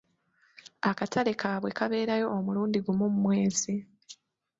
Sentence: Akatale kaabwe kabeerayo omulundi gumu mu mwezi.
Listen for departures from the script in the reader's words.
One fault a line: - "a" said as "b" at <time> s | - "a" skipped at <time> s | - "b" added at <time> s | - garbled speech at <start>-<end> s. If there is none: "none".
none